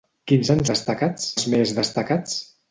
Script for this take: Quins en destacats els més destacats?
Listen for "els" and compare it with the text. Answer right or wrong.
right